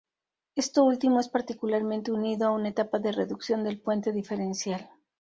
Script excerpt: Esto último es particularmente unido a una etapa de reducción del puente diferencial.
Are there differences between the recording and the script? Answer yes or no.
no